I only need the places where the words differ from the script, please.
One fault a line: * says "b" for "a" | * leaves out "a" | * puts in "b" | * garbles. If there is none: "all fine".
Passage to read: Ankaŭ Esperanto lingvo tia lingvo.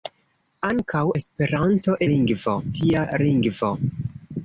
all fine